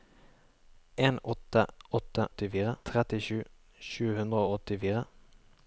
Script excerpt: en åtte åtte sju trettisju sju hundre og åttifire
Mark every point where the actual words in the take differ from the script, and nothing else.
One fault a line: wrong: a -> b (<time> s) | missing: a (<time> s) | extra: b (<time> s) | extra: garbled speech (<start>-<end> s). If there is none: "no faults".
wrong: sju -> åttifire (2.3 s)